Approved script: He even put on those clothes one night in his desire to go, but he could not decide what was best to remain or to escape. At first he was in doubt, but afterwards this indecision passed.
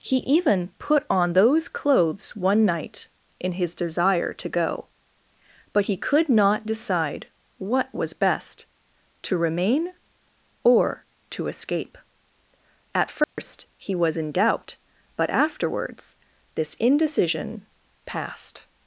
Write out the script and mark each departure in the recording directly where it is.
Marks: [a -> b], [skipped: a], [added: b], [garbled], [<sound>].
He even put on those clothes one night in his desire to go, but he could not decide what was best to remain or to escape. At first [dropout] he was in doubt, but afterwards this indecision passed.